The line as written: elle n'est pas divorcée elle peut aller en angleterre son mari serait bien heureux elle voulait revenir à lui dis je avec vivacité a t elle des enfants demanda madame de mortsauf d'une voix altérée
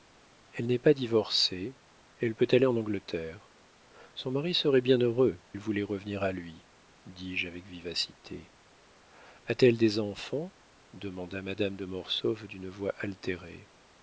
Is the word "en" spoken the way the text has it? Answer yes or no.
yes